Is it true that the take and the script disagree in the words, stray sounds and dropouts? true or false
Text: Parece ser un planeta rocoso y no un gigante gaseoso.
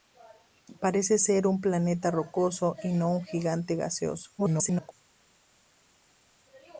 true